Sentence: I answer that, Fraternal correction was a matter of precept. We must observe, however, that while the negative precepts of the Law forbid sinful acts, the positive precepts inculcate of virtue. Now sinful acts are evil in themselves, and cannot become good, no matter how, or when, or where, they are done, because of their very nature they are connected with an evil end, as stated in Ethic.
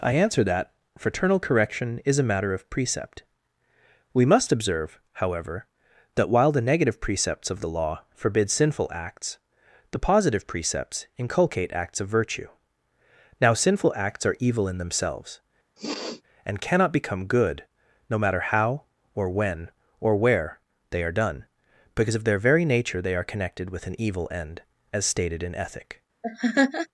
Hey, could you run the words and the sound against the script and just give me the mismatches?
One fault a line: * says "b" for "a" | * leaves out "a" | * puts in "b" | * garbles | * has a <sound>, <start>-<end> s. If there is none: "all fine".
* says "is" for "was"
* puts in "acts"
* has a sniff, 15.8-16.2 s
* has a laugh, 26.2-26.9 s